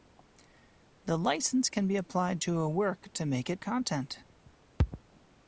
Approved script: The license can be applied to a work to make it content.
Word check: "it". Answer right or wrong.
right